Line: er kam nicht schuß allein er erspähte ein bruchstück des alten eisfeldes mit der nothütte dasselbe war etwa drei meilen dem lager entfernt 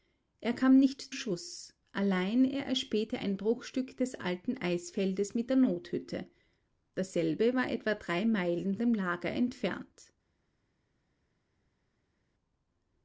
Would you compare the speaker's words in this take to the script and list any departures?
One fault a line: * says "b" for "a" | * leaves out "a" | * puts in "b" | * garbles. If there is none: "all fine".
all fine